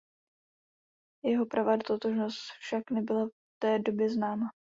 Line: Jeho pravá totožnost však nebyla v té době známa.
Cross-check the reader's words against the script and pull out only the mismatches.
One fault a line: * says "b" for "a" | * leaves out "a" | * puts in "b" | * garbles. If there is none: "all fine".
all fine